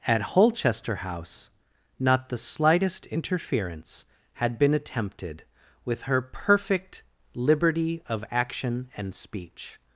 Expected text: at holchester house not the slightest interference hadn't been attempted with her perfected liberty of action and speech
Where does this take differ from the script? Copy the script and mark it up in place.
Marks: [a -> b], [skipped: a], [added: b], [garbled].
at holchester house not the slightest interference [hadn't -> had] been attempted with her [perfected -> perfect] liberty of action and speech